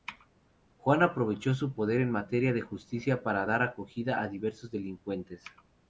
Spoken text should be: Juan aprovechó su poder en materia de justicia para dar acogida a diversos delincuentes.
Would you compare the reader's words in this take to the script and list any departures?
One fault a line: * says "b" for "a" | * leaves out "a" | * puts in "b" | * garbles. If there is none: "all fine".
all fine